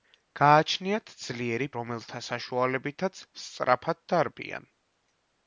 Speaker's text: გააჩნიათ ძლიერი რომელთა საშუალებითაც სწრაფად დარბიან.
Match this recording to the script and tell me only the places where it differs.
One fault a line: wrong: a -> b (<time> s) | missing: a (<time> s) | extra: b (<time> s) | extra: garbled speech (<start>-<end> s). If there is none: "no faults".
no faults